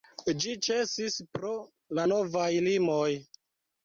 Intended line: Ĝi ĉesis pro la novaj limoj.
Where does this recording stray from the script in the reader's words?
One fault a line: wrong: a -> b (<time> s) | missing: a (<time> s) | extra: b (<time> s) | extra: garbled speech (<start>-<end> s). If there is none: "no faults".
no faults